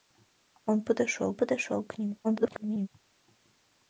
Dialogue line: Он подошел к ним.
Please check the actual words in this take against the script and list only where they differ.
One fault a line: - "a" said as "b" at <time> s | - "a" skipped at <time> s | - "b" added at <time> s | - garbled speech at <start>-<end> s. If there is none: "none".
- "подошел" added at 1.4 s
- garbled speech at 2.2-2.9 s